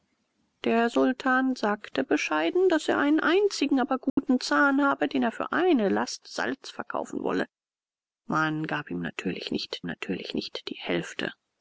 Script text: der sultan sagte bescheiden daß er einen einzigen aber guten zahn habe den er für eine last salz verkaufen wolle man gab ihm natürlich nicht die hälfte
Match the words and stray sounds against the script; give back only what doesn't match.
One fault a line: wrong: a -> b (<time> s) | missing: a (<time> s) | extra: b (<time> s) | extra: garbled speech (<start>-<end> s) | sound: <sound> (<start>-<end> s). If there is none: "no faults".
sound: dropout (4.1-4.2 s)
extra: natürlich nicht (9.9 s)